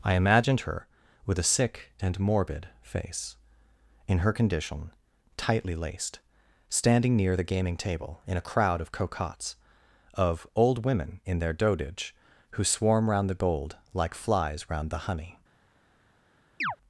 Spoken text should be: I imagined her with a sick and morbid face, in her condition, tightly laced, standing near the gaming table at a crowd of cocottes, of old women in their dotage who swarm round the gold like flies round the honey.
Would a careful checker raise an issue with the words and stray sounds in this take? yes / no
yes